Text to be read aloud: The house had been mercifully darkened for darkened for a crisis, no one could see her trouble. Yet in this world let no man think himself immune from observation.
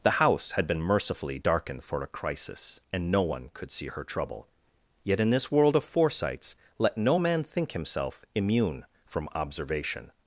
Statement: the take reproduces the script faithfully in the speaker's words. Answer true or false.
false